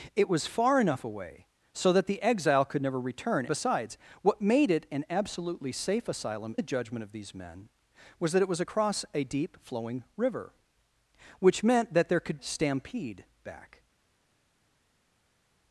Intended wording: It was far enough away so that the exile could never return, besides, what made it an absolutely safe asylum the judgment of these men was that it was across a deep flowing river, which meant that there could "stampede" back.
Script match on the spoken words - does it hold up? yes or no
yes